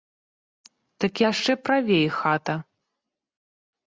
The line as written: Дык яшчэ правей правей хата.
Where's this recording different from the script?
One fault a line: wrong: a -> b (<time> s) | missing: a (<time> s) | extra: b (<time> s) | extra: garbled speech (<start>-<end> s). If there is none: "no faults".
missing: правей (2.1 s)